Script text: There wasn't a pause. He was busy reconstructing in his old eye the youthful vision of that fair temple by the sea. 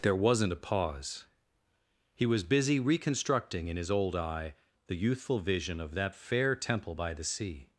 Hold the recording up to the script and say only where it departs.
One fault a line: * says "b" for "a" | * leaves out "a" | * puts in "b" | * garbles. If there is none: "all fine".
all fine